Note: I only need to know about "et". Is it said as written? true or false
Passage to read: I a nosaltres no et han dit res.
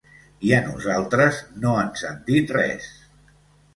false